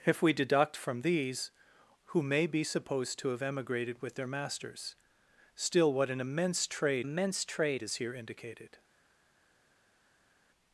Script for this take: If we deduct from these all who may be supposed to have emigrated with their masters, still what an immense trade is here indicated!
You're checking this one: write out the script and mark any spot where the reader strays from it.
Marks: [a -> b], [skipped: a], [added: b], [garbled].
If we deduct from these [skipped: all] who may be supposed to have emigrated with their masters, still what an immense trade [added: immense trade] is here indicated!